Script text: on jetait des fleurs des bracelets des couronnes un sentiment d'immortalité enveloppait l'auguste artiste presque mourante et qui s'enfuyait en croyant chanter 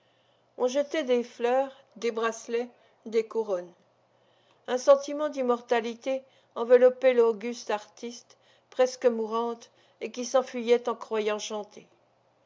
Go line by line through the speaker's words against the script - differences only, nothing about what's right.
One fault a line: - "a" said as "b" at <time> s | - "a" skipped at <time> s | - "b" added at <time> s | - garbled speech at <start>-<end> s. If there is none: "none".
none